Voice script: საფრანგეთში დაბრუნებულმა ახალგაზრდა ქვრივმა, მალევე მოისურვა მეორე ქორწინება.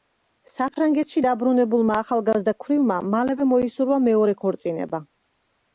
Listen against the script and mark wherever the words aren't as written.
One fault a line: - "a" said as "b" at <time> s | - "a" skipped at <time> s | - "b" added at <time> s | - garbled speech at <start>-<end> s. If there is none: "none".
none